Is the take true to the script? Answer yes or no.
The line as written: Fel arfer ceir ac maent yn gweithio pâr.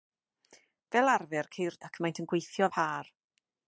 yes